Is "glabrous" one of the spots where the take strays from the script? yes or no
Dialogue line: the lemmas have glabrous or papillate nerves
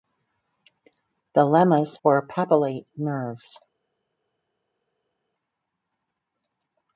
yes